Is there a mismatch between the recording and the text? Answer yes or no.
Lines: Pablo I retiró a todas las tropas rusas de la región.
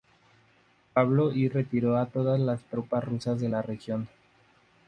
no